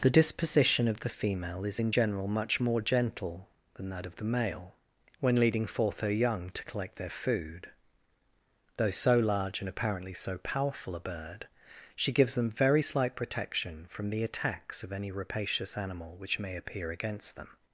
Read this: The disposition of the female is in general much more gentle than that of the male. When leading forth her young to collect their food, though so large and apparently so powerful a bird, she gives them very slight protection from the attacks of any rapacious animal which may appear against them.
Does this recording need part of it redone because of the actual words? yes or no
no